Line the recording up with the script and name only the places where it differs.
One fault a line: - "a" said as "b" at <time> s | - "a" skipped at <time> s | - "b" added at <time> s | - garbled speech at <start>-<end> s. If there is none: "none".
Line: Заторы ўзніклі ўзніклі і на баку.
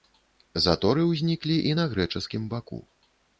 - "ўзніклі" skipped at 1.6 s
- "грэчаскім" added at 2.0 s